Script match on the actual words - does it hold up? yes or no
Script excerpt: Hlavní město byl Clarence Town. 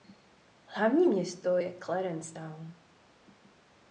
no